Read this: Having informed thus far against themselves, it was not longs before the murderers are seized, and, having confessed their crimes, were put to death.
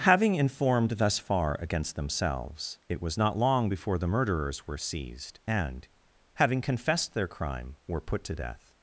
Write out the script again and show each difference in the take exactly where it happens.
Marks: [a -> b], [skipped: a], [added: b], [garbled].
Having informed thus far against themselves, it was not [longs -> long] before the murderers [are -> were] seized, and, having confessed their [crimes, -> crime] were put to death.